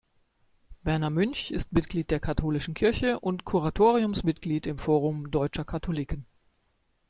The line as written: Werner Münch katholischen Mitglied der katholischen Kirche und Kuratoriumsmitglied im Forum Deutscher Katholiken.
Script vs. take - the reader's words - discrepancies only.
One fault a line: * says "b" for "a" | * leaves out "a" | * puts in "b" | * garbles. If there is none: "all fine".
* says "ist" for "katholischen"